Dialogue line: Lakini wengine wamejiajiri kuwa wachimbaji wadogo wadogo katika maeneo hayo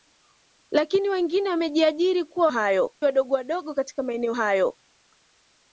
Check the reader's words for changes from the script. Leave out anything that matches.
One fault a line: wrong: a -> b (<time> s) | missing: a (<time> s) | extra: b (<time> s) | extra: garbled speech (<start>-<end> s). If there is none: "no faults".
wrong: wachimbaji -> hayo (2.5 s)